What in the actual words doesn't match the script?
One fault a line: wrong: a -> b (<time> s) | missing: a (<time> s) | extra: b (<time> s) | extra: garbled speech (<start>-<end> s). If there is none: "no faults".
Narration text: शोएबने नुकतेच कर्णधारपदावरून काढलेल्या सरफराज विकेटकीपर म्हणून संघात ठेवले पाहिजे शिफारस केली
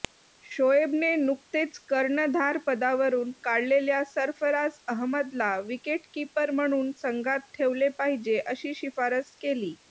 extra: अहमदला (4.9 s)
extra: अशी (8.5 s)